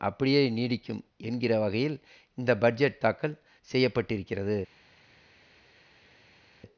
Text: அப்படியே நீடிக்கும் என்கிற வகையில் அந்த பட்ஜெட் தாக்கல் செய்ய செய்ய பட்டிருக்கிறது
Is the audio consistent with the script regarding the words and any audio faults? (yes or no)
no